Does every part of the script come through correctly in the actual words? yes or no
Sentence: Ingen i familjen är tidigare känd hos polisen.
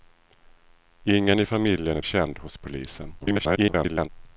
no